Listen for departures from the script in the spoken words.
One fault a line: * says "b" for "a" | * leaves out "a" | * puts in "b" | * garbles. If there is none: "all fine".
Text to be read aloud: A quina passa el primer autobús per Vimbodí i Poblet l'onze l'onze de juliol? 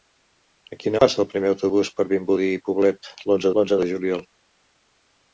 all fine